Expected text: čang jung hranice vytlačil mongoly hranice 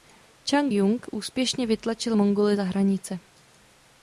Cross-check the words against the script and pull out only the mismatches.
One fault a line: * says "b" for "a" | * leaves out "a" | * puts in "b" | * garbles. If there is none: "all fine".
* says "úspěšně" for "hranice"
* puts in "za"